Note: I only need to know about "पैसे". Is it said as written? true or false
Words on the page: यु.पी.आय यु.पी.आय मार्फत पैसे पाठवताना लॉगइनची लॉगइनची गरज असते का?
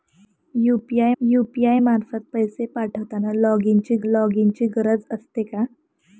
true